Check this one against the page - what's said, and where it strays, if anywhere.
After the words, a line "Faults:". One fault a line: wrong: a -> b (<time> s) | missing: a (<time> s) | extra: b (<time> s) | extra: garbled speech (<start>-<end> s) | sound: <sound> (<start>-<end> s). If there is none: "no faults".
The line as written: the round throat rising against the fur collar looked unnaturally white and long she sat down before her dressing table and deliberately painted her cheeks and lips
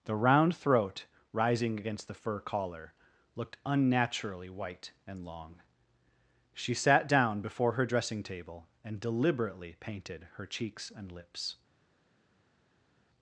the round throat rising against the fur collar looked unnaturally white and long she sat down before her dressing table and deliberately painted her cheeks and lips
Faults:
no faults